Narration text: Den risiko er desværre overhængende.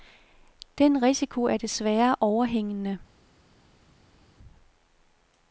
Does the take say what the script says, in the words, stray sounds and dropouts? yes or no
yes